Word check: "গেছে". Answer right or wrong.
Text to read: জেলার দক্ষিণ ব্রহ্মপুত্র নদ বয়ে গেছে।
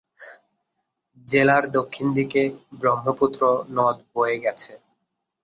right